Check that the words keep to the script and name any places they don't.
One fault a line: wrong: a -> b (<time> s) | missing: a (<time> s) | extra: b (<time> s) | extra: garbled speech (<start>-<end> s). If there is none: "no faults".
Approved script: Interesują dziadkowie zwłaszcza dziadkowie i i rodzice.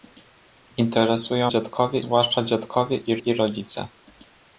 no faults